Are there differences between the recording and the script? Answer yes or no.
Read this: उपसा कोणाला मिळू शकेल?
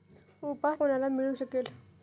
no